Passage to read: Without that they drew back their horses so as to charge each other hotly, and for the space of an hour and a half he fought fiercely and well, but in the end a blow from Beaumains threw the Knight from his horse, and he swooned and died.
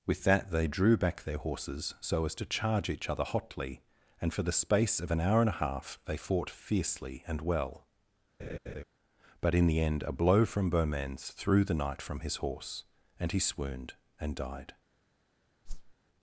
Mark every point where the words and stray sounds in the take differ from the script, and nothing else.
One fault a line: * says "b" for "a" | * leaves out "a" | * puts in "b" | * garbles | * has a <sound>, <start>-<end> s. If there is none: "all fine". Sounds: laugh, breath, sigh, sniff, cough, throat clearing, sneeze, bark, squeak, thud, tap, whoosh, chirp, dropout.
* says "With" for "Without"
* says "they" for "he"
* has a laugh, 8.4-8.8 s
* has a whoosh, 15.7-15.9 s